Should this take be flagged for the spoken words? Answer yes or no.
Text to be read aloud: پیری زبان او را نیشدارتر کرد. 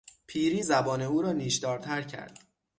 no